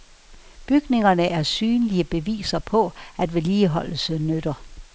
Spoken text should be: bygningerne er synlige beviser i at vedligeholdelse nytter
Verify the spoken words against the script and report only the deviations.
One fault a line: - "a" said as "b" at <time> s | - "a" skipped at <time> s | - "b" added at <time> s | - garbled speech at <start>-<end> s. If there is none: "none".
- "i" said as "på" at 2.6 s